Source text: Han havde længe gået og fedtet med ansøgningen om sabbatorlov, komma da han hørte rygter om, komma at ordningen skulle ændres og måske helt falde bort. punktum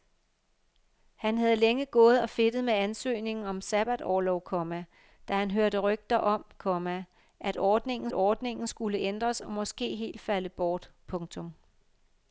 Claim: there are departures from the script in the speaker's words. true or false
true